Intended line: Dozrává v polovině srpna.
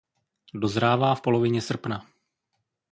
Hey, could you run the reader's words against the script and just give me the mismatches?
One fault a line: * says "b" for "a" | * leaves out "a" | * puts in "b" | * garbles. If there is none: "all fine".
all fine